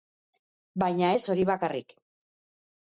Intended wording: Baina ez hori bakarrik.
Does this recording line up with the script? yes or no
yes